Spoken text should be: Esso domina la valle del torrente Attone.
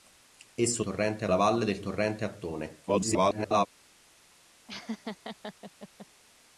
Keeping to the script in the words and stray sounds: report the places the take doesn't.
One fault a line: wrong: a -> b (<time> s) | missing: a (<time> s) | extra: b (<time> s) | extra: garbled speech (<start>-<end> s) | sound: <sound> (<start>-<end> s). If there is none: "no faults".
wrong: domina -> torrente (0.8 s)
extra: garbled speech (2.9-3.7 s)
sound: laugh (4.7-6.1 s)